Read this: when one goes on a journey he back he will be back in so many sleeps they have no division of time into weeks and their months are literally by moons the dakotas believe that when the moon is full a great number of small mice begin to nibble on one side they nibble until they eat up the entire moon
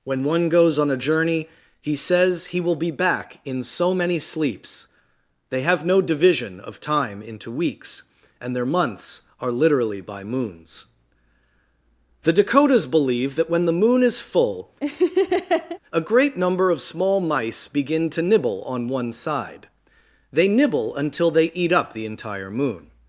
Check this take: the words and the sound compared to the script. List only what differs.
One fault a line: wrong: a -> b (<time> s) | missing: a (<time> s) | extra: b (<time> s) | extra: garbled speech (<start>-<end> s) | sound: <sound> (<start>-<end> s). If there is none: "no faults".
wrong: back -> says (1.9 s)
sound: laugh (14.8-15.8 s)